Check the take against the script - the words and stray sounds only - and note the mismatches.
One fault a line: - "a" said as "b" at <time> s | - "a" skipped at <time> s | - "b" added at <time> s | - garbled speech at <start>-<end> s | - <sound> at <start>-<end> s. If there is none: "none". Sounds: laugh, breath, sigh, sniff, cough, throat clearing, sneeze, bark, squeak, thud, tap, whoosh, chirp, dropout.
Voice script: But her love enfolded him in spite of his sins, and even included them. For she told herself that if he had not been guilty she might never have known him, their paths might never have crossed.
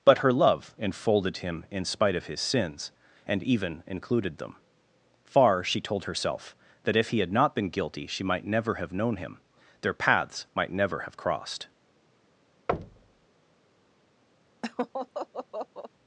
- "For" said as "Far" at 5.2 s
- thud at 12.7-13.3 s
- laugh at 14.6-15.9 s